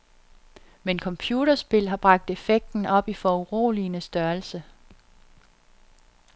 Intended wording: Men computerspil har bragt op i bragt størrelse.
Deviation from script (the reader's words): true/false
true